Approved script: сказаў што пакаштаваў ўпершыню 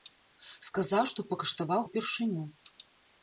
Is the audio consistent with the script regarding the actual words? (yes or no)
yes